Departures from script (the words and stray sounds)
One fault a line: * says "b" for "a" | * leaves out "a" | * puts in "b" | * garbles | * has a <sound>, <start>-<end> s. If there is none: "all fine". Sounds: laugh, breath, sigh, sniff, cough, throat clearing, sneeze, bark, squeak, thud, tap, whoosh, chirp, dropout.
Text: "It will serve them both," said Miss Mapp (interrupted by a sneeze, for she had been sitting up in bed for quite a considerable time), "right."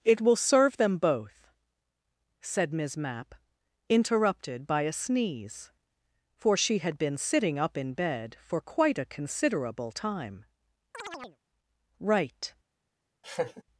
* has a chirp, 10.9-11.4 s
* has a laugh, 13.2-13.6 s